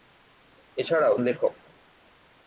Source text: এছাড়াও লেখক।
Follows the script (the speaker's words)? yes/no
yes